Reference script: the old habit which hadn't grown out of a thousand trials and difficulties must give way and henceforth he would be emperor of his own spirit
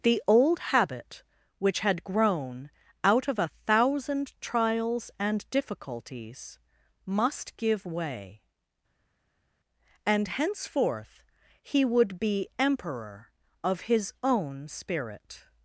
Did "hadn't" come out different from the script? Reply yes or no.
yes